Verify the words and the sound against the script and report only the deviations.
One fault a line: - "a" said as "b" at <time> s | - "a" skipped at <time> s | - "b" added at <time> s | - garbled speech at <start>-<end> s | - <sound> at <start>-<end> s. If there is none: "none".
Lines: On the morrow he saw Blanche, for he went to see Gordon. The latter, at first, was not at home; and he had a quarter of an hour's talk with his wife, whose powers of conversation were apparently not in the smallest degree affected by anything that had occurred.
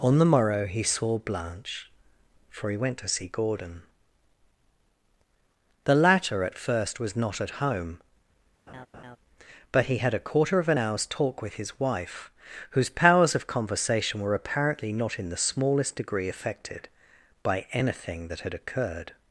- laugh at 8.7-9.2 s
- "and" said as "but" at 9.7 s